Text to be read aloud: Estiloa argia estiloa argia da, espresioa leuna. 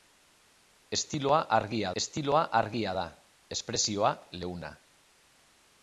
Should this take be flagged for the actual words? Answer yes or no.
no